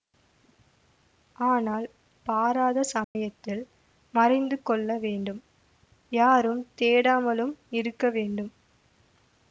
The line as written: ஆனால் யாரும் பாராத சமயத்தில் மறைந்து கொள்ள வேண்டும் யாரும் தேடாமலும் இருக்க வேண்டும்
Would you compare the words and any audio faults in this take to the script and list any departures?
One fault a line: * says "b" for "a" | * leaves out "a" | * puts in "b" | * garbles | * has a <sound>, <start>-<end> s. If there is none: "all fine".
* leaves out "யாரும்"
* has a dropout, 3.0-3.2 s